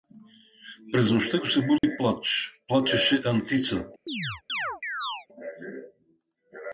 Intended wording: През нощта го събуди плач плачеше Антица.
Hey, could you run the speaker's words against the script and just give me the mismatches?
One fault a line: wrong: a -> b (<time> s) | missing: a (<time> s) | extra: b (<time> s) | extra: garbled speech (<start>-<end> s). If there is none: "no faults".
no faults